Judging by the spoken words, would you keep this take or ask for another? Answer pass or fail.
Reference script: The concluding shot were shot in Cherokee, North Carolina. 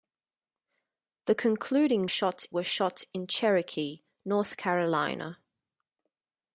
pass